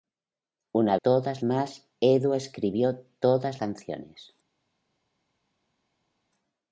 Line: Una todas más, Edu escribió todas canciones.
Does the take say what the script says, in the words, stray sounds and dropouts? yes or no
yes